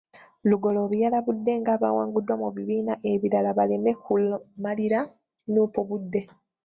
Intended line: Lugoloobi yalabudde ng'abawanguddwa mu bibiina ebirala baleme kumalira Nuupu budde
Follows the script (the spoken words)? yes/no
yes